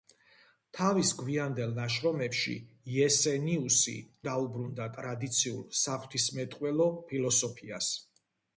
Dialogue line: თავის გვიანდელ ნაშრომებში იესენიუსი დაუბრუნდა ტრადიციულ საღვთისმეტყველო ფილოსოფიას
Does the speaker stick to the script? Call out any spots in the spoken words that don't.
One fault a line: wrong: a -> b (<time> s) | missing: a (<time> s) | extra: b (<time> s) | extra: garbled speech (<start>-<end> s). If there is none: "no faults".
no faults